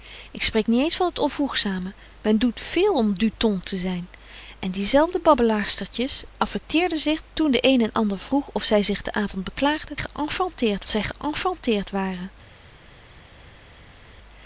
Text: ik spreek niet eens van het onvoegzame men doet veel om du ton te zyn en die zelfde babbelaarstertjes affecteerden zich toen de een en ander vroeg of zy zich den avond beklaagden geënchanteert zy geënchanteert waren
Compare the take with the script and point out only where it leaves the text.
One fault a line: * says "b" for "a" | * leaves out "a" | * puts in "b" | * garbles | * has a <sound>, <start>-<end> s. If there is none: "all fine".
all fine